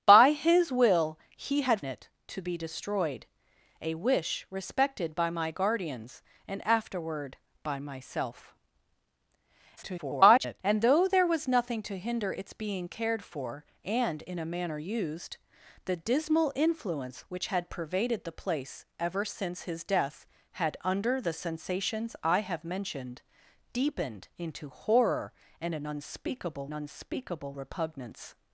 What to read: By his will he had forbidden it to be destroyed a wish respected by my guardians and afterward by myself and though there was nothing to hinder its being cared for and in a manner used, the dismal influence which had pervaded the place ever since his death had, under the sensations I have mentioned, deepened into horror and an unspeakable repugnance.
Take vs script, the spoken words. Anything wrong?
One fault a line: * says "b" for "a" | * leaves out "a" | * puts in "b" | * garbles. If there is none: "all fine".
* leaves out "forbidden"
* garbles
* puts in "unspeakable"